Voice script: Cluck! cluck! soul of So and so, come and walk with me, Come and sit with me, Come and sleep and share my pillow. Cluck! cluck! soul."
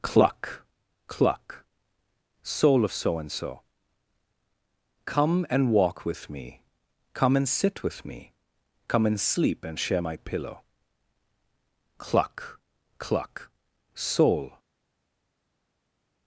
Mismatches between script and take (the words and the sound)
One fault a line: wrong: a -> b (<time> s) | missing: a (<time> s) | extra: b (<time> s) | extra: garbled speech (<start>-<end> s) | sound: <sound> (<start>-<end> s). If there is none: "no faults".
no faults